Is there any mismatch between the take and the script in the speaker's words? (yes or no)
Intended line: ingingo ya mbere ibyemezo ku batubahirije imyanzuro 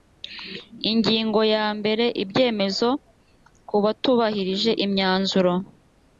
no